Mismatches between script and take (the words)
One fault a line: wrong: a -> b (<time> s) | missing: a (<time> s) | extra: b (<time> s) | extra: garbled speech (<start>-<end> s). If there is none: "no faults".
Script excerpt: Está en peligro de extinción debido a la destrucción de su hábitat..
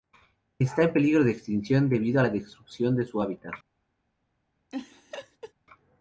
no faults